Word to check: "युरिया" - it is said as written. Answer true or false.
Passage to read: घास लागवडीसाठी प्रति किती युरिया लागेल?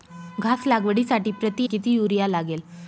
true